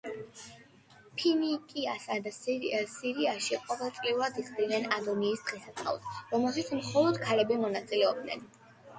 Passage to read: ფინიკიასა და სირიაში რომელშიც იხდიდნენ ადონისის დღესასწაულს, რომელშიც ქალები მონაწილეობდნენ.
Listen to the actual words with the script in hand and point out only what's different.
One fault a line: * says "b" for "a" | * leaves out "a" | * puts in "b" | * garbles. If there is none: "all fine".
* says "ყოველწლიურად" for "რომელშიც"
* puts in "მხოლოდ"